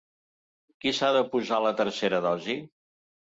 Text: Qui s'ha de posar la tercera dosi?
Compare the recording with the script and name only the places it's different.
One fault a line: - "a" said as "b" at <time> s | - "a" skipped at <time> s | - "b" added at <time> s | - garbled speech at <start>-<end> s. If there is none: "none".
none